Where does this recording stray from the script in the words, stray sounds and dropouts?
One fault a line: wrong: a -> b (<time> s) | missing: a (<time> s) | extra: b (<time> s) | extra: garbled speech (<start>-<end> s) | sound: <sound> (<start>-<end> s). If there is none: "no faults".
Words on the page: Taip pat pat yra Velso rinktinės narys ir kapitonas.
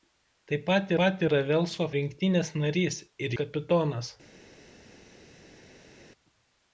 no faults